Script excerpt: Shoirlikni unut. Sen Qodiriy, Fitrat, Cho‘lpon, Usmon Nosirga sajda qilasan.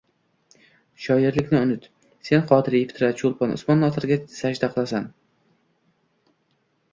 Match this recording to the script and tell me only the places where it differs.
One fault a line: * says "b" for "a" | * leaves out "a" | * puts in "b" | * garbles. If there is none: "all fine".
all fine